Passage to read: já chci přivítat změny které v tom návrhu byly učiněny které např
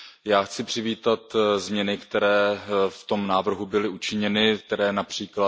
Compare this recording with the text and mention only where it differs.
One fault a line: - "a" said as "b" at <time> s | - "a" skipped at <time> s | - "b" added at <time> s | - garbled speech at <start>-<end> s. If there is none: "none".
none